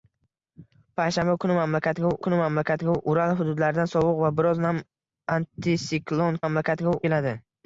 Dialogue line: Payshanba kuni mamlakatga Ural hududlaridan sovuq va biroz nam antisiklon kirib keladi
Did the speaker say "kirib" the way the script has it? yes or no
no